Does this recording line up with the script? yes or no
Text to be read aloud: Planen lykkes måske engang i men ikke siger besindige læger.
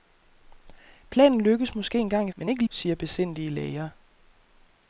yes